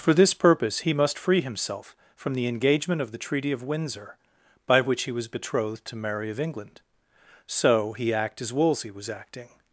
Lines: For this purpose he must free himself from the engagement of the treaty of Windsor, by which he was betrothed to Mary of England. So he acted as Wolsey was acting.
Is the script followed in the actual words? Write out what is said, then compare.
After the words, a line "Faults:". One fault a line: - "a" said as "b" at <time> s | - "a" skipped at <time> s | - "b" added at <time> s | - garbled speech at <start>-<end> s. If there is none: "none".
For this purpose he must free himself from the engagement of the treaty of Windsor, by which he was betrothed to Mary of England. So he act as Wolsey was acting.
Faults:
- "acted" said as "act" at 8.1 s